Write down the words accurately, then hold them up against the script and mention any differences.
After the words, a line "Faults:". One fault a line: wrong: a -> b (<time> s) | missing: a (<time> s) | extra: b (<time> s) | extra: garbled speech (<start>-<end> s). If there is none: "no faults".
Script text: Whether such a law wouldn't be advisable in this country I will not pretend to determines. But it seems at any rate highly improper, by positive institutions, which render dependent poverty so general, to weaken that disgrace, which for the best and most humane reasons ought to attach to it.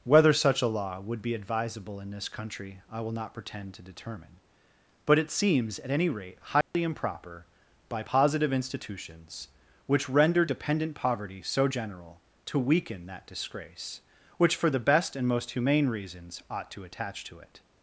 Whether such a law would be advisable in this country I will not pretend to determine. But it seems at any rate highly improper, by positive institutions, which render dependent poverty so general, to weaken that disgrace, which for the best and most humane reasons ought to attach to it.
Faults:
wrong: wouldn't -> would (1.0 s)
wrong: determines -> determine (3.8 s)